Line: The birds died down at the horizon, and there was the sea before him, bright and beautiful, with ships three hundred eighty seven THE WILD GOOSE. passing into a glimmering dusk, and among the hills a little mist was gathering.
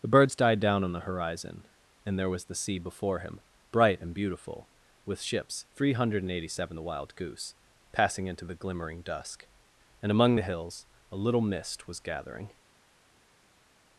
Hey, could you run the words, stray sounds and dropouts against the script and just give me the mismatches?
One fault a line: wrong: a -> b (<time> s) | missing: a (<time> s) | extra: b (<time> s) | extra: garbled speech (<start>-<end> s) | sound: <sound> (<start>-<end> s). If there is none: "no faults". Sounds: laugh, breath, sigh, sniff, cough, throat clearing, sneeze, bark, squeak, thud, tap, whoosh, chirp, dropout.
wrong: at -> on (0.8 s)
wrong: a -> the (8.4 s)